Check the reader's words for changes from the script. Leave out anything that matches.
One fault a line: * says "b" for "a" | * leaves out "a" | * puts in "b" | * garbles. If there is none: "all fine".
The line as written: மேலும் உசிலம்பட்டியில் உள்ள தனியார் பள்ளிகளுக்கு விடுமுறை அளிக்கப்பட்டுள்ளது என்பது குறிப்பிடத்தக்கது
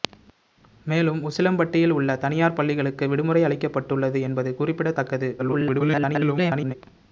* garbles